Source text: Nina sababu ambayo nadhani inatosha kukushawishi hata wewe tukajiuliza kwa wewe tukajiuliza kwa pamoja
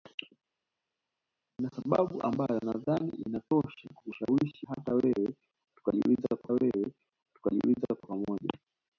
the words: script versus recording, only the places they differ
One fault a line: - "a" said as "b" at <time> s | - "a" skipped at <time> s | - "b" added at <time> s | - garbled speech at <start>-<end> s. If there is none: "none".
none